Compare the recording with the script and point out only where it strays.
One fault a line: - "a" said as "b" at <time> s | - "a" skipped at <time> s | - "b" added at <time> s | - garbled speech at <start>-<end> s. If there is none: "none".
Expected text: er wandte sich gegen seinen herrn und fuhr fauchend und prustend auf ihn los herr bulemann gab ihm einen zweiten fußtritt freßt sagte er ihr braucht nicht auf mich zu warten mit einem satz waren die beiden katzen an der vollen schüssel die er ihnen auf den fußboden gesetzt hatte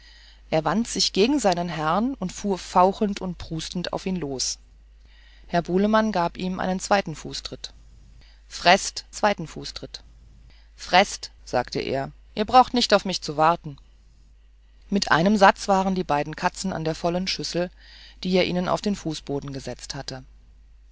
- "zweiten fußtritt freßt" added at 9.1 s